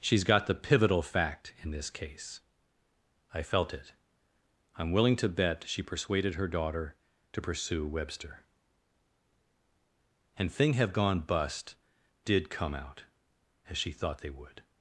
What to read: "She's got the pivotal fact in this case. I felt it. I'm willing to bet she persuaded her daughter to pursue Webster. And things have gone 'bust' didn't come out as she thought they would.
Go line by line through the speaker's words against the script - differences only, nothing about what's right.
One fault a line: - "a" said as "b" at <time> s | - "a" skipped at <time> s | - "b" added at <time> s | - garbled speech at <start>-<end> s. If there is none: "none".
- "things" said as "thing" at 10.5 s
- "didn't" said as "did" at 12.2 s